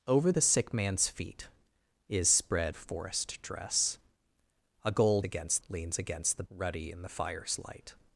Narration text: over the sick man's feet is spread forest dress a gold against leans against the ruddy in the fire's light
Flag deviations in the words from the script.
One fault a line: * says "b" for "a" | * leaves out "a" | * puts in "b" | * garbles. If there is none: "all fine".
all fine